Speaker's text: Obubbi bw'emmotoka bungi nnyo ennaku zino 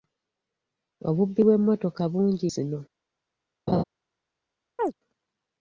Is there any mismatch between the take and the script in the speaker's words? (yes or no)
yes